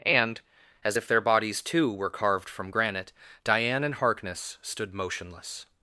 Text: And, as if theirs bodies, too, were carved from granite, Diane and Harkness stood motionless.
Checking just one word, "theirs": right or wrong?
wrong